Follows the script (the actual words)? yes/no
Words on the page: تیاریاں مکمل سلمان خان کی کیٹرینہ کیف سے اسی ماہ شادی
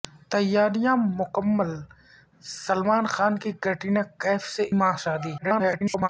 no